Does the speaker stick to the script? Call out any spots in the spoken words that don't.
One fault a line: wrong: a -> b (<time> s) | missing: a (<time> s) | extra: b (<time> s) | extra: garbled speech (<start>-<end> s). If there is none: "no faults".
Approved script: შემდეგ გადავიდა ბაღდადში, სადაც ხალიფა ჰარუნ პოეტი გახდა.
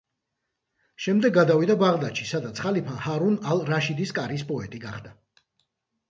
extra: ალ რაშიდის კარის (3.5 s)